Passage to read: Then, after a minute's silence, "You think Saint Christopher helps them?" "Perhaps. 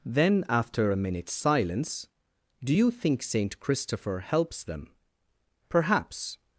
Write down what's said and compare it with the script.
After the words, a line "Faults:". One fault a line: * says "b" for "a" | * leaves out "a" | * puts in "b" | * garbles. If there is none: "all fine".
Then, after a minute's silence, "Do you think Saint Christopher helps them?" "Perhaps.
Faults:
* puts in "Do"